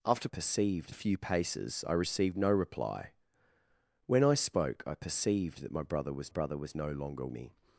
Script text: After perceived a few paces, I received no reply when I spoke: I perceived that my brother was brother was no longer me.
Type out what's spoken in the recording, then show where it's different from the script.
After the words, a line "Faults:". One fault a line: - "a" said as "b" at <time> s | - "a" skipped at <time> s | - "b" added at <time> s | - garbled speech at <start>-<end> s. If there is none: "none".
After perceived a few paces, I received no reply when I spoke: I perceived that my brother was brother was no longer me.
Faults:
none